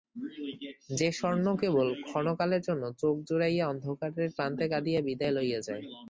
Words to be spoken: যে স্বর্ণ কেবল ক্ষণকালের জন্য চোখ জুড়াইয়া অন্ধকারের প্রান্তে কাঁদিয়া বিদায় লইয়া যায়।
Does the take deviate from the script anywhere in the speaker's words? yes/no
no